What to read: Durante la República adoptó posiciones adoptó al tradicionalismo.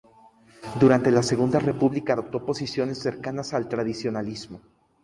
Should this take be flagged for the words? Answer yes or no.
yes